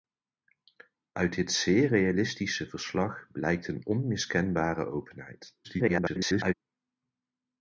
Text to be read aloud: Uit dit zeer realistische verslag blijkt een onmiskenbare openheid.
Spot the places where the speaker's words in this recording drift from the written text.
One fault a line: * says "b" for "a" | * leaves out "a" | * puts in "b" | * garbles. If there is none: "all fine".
* garbles